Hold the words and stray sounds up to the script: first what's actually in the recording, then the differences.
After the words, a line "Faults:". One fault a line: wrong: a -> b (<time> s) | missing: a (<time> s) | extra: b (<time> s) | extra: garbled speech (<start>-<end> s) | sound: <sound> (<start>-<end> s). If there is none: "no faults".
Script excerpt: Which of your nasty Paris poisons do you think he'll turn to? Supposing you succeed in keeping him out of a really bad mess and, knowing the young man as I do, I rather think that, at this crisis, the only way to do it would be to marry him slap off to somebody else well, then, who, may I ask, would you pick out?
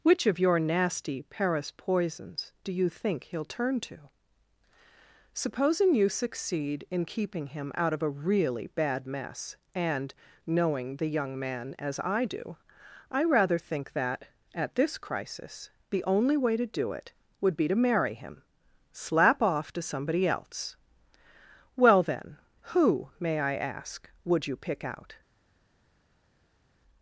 Which of your nasty Paris poisons do you think he'll turn to? Supposing you succeed in keeping him out of a really bad mess and, knowing the young man as I do, I rather think that, at this crisis, the only way to do it would be to marry him slap off to somebody else well, then, who, may I ask, would you pick out?
Faults:
no faults